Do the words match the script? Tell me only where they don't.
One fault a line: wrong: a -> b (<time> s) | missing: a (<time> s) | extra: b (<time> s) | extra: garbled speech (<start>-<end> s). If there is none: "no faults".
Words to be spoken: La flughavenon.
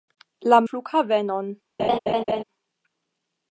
no faults